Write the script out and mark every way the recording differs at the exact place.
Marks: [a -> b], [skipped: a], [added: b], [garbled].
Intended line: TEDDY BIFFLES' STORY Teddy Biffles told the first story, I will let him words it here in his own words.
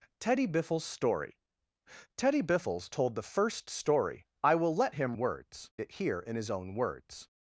TEDDY BIFFLES' STORY Teddy Biffles told the first story, I will let him words it here in his own words.